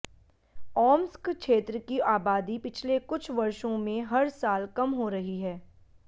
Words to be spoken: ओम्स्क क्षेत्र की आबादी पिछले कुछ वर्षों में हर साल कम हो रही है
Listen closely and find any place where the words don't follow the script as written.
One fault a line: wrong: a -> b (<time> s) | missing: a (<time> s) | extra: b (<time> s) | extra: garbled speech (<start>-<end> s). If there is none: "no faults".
no faults